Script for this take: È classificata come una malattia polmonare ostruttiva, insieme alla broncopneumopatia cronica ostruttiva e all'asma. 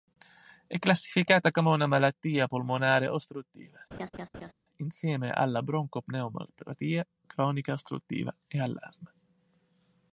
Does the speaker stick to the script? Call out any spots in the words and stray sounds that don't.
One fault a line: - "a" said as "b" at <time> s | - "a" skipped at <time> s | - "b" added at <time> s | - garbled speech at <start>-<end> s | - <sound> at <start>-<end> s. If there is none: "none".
- laugh at 3.9-4.5 s